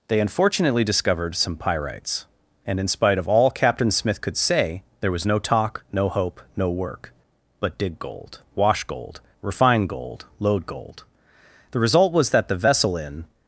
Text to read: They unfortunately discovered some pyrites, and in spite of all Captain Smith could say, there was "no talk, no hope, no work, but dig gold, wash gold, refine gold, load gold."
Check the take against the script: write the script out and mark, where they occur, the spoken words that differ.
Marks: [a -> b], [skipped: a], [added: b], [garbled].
They unfortunately discovered some pyrites, and in spite of all Captain Smith could say, there was "no talk, no hope, no work, but dig gold, wash gold, refine gold, load gold." [added: The result was that the vessel in]